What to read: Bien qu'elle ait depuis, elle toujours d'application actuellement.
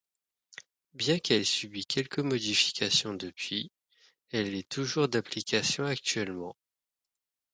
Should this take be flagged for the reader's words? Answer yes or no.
yes